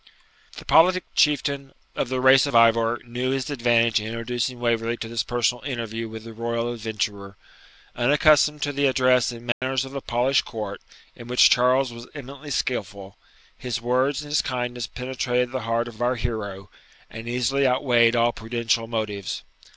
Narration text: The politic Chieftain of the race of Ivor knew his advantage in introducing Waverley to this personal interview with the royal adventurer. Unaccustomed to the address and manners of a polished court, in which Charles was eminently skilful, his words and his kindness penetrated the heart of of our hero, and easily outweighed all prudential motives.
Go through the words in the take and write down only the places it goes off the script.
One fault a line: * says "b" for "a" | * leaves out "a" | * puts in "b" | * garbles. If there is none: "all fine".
all fine